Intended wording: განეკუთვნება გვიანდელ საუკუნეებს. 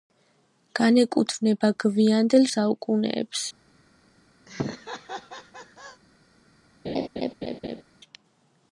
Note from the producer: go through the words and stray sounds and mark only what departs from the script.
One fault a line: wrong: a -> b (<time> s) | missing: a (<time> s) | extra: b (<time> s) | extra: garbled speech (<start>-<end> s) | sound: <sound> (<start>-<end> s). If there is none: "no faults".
sound: laugh (4.5-6.0 s)
sound: laugh (6.8-7.8 s)